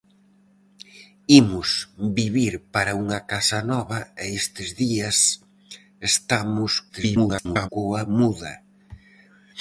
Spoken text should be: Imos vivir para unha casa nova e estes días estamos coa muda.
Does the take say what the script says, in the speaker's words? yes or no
no